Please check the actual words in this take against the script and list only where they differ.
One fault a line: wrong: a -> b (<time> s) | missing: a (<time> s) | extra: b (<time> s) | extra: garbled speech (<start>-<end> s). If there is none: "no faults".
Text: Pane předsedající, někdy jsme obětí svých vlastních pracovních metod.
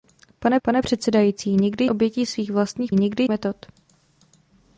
extra: pane (0.6 s)
missing: jsme (1.8 s)
wrong: pracovních -> někdy (2.9 s)